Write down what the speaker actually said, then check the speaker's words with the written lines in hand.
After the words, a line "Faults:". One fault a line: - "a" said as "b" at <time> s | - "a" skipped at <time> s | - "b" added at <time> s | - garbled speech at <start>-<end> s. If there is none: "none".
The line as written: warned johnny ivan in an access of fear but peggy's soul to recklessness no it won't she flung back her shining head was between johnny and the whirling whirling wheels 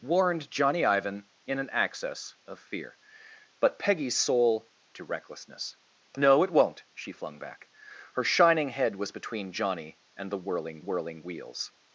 warned johnny ivan in an access of fear but peggy's soul to recklessness no it won't she flung back her shining head was between johnny and the whirling whirling wheels
Faults:
none